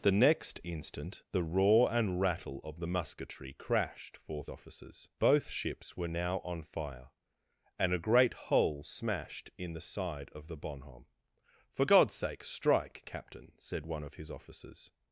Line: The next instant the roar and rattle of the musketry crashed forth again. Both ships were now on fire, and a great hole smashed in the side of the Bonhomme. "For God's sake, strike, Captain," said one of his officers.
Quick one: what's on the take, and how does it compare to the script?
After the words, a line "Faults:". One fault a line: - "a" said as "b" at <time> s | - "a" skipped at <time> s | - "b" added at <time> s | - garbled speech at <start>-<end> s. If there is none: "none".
The next instant the roar and rattle of the musketry crashed forth officers. Both ships were now on fire, and a great hole smashed in the side of the Bonhomme. "For God's sake, strike, Captain," said one of his officers.
Faults:
- "again" said as "officers" at 4.5 s